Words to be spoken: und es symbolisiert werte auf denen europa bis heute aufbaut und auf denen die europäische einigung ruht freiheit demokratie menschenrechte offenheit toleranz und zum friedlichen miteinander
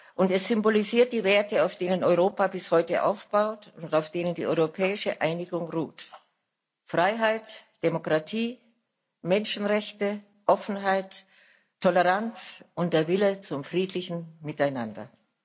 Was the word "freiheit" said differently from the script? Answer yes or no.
no